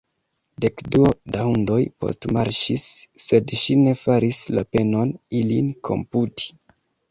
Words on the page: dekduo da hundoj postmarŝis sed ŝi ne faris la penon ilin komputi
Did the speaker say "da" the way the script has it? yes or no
yes